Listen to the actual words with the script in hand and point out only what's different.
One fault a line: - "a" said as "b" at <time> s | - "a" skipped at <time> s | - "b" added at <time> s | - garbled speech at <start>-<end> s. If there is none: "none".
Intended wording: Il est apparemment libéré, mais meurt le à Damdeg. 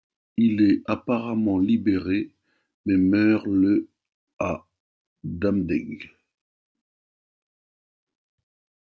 none